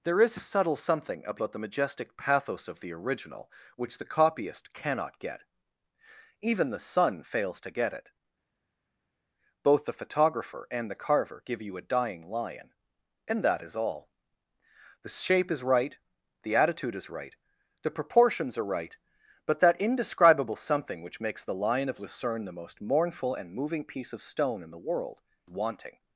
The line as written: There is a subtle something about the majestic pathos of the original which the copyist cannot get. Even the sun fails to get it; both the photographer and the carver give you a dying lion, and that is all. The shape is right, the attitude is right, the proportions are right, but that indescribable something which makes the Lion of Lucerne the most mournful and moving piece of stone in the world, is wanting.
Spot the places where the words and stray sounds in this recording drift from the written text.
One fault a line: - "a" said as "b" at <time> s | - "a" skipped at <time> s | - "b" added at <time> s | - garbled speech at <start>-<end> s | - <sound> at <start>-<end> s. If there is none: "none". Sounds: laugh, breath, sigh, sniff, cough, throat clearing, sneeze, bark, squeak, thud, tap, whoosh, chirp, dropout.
- "is" skipped at 25.2 s